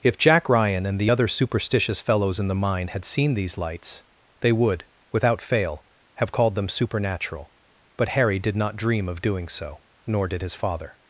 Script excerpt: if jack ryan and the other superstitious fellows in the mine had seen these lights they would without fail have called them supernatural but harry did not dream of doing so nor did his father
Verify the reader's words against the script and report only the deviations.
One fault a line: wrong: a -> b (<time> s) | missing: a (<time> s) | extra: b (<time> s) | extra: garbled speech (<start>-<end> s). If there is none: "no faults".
no faults